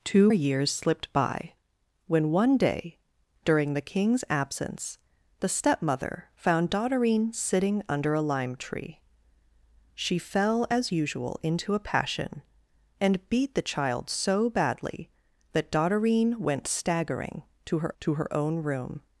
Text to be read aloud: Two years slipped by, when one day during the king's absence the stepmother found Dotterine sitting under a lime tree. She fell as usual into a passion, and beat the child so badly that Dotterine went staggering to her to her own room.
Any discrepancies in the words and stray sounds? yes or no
no